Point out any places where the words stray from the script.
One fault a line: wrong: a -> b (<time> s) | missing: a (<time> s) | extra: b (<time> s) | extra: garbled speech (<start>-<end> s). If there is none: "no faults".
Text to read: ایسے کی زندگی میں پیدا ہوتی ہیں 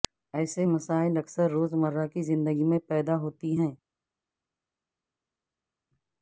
extra: مسائل اکثر روزمرہ (0.6 s)